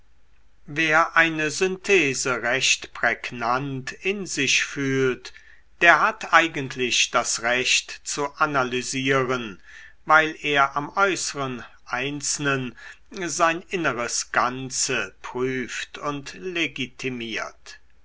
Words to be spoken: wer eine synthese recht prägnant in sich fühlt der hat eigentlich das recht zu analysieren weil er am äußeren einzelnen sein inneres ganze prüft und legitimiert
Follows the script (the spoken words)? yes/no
yes